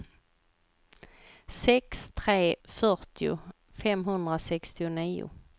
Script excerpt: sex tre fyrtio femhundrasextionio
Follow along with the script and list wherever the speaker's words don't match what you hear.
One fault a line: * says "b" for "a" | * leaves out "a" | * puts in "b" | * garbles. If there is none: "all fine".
all fine